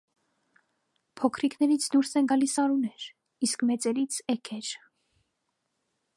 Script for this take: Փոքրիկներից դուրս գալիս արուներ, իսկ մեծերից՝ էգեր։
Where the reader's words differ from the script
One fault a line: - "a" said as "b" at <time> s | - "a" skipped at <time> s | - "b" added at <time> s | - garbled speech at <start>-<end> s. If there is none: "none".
- "են" added at 2.2 s